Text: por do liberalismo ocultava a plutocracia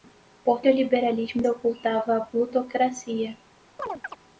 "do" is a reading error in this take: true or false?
false